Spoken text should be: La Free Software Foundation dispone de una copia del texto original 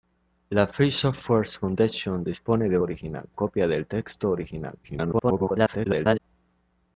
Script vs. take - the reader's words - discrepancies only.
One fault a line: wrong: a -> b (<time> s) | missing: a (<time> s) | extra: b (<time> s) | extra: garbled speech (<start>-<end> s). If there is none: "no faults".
wrong: una -> original (2.8 s)
extra: garbled speech (4.8-6.2 s)